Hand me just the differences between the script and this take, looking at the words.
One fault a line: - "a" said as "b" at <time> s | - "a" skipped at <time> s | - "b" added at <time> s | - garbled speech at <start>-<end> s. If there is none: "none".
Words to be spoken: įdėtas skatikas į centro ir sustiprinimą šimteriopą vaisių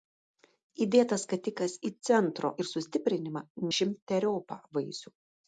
none